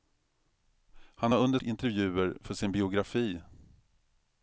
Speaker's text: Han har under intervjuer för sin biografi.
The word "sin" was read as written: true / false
true